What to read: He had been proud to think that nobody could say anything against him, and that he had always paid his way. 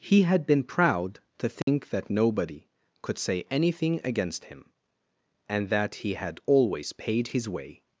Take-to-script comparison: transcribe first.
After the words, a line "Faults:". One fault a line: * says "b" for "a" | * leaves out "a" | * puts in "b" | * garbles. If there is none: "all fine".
He had been proud to think that nobody could say anything against him, and that he had always paid his way.
Faults:
all fine